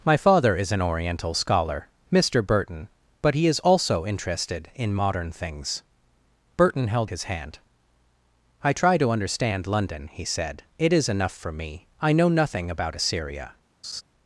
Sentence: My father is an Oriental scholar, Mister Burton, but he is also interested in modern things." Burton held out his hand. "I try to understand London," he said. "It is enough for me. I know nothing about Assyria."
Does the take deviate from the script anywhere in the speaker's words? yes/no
yes